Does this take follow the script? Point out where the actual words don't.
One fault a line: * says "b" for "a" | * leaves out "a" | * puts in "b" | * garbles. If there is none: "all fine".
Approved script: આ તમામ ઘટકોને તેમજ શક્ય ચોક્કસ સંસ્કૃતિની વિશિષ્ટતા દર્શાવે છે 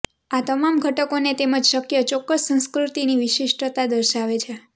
all fine